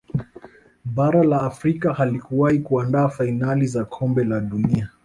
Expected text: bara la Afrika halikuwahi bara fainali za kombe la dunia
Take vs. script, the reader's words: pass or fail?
fail